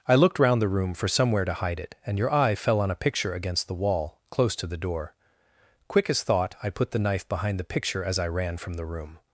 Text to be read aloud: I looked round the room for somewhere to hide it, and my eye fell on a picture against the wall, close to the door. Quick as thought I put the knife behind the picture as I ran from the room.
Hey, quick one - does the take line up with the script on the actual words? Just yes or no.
no